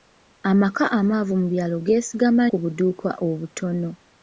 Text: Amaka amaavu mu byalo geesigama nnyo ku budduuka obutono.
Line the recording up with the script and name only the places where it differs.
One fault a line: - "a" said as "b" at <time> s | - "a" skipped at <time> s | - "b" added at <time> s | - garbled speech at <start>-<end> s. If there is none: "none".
- "nnyo" skipped at 2.4 s